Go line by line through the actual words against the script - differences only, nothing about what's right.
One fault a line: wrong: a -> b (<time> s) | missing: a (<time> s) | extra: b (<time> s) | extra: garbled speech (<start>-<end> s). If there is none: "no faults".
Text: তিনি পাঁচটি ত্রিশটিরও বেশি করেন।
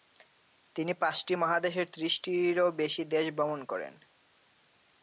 extra: মহাদেশের (1.3 s)
extra: দেশ ভ্রমণ (3.1 s)